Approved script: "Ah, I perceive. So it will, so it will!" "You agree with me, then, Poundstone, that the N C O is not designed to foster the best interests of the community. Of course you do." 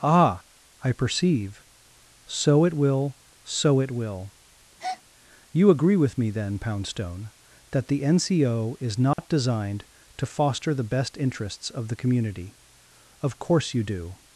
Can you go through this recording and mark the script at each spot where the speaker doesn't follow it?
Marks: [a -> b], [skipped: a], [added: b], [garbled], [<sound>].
"Ah, I perceive. So it will, so it will!" [breath] "You agree with me, then, Poundstone, that the N C O is not [dropout] designed to foster the best interests of the community. Of course you do."